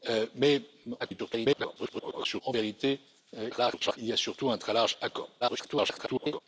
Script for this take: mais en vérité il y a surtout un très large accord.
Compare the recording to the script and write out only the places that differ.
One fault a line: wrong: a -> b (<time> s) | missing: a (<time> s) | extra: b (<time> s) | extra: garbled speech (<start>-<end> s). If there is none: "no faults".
extra: garbled speech (1.0-2.4 s)
extra: garbled speech (3.5-4.0 s)
extra: garbled speech (5.4-6.4 s)